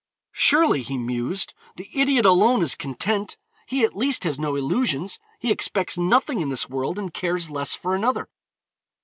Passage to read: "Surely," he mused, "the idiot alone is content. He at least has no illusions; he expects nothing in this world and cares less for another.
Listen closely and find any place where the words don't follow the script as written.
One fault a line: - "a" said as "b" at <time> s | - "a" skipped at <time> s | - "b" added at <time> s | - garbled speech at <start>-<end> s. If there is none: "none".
none